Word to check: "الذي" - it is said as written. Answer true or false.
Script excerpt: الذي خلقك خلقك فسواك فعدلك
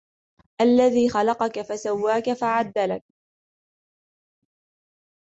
true